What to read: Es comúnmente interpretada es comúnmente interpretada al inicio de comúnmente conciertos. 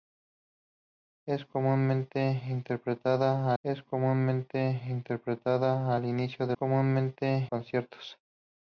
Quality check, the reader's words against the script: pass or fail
pass